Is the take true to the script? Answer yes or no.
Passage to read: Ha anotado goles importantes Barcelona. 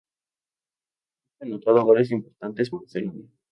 yes